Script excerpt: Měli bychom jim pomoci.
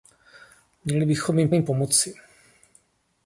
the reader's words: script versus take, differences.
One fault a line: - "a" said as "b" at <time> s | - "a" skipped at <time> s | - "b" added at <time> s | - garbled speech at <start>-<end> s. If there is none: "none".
- "jim" added at 1.5 s